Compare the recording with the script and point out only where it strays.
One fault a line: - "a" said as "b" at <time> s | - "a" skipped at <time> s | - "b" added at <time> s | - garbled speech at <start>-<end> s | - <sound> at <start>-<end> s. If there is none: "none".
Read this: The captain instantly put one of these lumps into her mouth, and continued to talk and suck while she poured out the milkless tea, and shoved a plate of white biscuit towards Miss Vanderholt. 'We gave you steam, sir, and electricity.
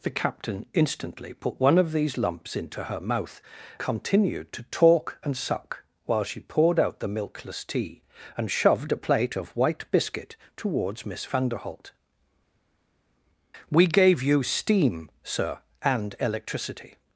- "and" skipped at 3.4 s